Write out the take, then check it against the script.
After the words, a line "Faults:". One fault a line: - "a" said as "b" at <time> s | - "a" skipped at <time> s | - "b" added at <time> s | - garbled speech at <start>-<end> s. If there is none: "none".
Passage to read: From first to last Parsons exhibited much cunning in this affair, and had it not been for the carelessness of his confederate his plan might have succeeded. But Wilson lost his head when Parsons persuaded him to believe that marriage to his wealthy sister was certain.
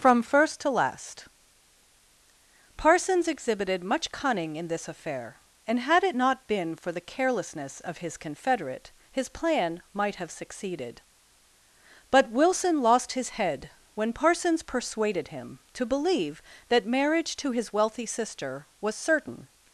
From first to last Parsons exhibited much cunning in this affair, and had it not been for the carelessness of his confederate his plan might have succeeded. But Wilson lost his head when Parsons persuaded him to believe that marriage to his wealthy sister was certain.
Faults:
none